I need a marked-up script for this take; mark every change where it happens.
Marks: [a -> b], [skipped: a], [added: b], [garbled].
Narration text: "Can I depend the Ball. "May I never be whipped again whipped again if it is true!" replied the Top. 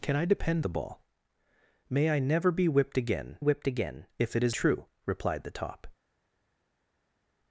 "Can I depend the Ball. "May I never be whipped again whipped again if it is true!" replied the Top.